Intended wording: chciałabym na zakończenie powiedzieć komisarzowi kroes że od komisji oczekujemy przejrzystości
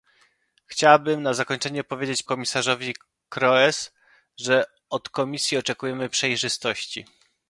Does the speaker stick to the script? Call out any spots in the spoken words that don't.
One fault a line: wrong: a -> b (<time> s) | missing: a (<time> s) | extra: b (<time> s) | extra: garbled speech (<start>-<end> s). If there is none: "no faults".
no faults